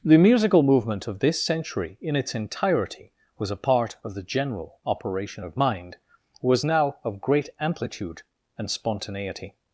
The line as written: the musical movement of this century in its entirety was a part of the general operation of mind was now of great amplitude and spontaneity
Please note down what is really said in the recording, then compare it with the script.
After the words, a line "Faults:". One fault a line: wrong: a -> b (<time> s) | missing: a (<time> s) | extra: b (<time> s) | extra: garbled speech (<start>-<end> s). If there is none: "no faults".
the musical movement of this century in its entirety was a part of the general operation of mind was now of great amplitude and spontaneity
Faults:
no faults